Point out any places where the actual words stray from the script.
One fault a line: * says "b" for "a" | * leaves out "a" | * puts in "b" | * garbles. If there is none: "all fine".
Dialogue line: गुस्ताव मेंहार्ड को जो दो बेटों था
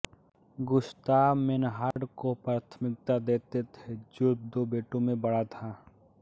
* puts in "प्राथमिकता देते थे"
* puts in "में बड़ा"